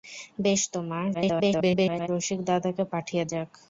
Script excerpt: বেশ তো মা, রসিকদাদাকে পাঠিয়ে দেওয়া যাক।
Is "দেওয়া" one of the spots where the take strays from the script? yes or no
yes